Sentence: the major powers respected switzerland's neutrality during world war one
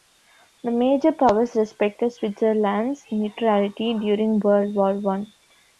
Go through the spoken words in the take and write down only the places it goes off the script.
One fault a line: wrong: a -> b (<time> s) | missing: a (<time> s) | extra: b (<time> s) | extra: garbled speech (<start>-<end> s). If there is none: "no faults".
no faults